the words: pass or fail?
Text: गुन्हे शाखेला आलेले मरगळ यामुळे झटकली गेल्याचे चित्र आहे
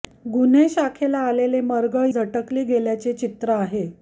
fail